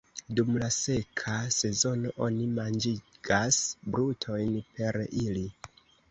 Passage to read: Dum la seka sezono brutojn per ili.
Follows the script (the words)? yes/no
no